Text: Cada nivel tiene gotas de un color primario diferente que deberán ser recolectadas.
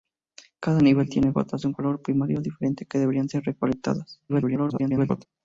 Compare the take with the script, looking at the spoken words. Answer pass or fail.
fail